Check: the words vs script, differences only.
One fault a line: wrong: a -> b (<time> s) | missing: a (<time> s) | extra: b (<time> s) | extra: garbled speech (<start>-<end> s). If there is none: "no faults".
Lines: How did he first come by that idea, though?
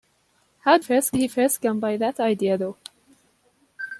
wrong: did -> first (0.8 s)